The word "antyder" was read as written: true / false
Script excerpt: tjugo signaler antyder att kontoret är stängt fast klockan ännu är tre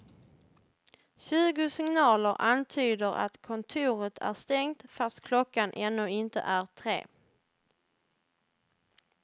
true